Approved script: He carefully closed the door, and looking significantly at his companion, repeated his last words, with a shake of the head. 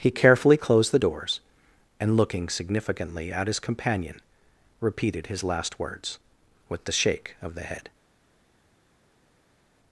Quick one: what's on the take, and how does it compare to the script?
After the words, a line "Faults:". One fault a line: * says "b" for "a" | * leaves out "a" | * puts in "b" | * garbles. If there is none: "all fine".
He carefully closed the doors, and looking significantly at his companion, repeated his last words, with the shake of the head.
Faults:
* says "doors" for "door"
* says "the" for "a"